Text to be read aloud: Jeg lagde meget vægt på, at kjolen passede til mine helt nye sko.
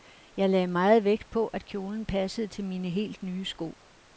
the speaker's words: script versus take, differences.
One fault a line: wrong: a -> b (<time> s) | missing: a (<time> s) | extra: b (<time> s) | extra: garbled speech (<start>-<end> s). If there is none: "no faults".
no faults